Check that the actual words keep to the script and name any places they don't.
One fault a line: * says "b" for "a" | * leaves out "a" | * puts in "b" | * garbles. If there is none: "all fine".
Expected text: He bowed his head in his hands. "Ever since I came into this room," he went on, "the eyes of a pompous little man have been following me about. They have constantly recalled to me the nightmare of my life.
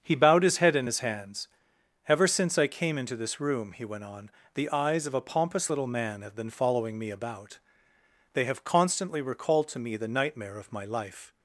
all fine